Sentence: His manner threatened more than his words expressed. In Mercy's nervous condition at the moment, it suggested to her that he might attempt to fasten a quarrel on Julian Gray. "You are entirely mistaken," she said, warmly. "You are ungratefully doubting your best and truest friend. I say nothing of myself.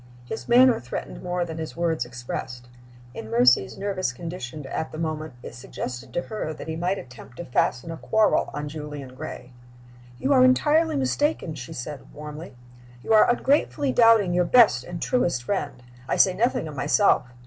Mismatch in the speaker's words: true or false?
false